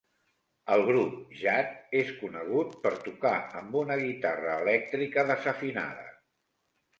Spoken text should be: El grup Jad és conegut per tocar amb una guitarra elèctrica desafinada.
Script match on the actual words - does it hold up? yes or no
yes